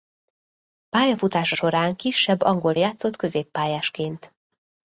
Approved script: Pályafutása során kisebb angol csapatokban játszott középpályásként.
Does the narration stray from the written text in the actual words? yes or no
yes